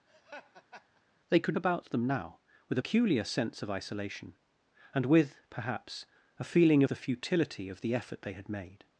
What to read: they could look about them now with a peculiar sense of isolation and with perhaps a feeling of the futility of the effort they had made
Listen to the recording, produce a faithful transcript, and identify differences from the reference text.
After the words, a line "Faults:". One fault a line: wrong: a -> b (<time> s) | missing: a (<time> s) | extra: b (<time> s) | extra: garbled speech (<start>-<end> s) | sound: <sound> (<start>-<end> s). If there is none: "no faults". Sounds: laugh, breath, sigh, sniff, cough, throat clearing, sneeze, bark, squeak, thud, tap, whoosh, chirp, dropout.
they could about them now with peculiar sense of isolation and with perhaps a feeling the futility of the effort they had made
Faults:
sound: laugh (0.1-1.0 s)
missing: look (1.6 s)
missing: a (2.8 s)
missing: of (6.8 s)